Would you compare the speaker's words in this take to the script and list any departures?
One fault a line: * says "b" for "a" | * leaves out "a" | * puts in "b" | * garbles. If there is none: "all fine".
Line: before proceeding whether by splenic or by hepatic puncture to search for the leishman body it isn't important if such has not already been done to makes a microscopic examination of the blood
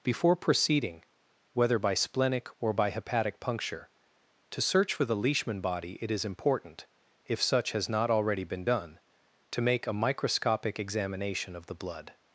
* says "is" for "isn't"
* says "make" for "makes"